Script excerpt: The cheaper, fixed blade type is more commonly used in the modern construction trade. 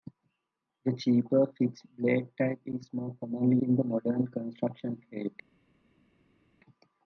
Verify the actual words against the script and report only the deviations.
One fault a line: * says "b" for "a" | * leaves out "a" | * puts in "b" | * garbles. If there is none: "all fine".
* leaves out "used"